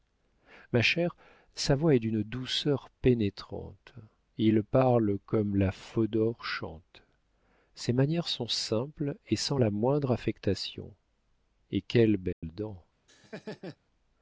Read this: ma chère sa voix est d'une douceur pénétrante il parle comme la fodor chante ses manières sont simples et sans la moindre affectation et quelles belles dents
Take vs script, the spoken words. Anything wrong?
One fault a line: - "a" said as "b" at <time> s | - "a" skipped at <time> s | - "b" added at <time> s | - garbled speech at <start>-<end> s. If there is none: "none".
none